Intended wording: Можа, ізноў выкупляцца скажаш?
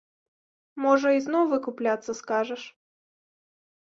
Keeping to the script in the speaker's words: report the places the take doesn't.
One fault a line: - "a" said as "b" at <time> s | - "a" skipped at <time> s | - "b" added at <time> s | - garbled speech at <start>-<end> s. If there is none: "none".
none